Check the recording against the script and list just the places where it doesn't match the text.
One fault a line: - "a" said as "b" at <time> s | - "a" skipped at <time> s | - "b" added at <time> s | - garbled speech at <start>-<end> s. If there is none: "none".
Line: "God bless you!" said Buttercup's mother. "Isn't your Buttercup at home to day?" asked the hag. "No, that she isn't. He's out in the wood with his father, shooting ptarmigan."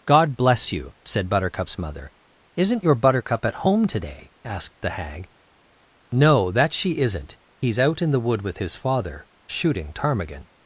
none